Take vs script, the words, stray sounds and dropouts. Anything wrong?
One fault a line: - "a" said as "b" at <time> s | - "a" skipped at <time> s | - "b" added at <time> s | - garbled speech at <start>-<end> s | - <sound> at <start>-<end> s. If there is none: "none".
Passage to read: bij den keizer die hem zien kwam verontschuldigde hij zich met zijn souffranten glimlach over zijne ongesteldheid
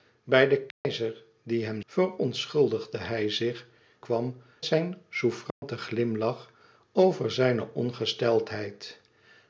- dropout at 0.7-0.8 s
- "zien kwam" skipped at 1.8 s
- "met" said as "kwam" at 4.0 s
- dropout at 5.5-5.6 s